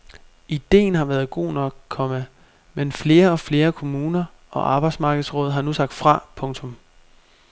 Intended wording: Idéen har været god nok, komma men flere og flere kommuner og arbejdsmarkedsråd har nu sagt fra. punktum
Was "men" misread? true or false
false